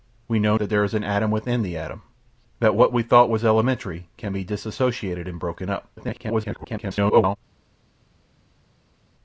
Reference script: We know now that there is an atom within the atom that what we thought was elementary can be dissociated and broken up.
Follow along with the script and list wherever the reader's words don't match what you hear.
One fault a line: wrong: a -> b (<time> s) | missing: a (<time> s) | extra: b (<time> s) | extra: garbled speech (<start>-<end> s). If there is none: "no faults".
missing: now (0.6 s)
extra: garbled speech (6.0-7.4 s)